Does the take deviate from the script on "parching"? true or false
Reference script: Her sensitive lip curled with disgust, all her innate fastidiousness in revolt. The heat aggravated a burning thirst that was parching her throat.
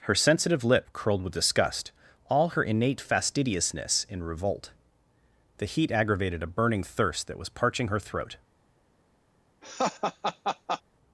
false